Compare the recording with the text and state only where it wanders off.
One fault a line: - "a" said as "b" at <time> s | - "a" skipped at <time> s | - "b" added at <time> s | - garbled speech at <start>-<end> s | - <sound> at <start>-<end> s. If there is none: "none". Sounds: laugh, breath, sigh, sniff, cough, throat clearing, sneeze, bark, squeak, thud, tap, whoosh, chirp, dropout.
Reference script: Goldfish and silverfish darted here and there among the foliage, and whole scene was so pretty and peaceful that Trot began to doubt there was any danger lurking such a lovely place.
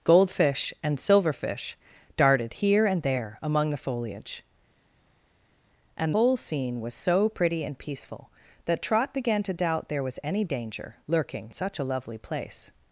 none